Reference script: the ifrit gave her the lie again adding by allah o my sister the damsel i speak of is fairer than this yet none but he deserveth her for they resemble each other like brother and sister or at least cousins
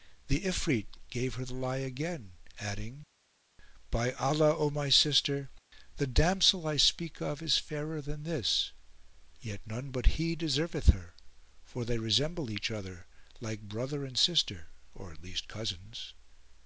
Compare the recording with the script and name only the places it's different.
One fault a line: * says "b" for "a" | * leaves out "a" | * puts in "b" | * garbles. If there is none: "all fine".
all fine